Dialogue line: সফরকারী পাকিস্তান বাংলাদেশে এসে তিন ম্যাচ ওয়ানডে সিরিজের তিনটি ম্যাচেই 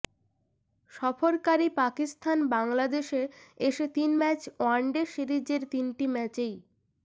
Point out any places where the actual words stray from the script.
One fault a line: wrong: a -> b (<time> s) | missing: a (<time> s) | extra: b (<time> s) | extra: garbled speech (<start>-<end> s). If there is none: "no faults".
no faults